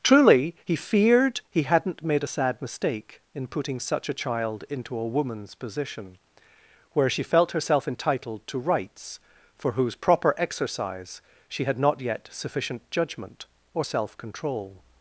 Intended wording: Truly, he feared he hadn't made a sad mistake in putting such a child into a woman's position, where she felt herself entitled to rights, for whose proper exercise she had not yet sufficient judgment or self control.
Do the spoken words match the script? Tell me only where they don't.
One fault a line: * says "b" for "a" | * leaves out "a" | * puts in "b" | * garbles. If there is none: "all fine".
all fine